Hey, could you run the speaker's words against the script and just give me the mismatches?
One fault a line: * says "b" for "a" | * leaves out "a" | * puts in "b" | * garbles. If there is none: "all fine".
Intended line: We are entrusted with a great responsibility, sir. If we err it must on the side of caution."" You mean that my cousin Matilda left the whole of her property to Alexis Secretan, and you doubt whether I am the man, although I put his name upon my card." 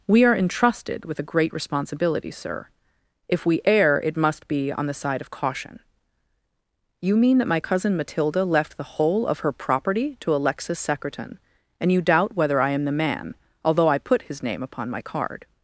* puts in "be"